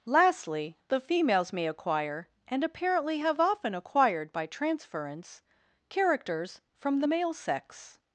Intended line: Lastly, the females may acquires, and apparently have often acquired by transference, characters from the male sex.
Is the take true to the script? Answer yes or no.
no